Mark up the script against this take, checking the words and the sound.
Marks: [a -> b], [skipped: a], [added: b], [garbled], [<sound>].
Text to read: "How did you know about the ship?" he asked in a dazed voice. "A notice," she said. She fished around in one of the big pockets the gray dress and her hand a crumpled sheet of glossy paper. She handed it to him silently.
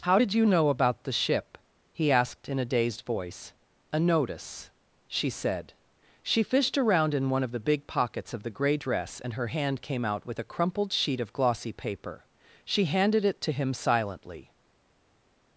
"How did you know about the ship?" he asked in a dazed voice. "A notice," she said. She fished around in one of the big pockets [added: of] the gray dress and her hand [added: came out with] a crumpled sheet of glossy paper. She handed it to him silently.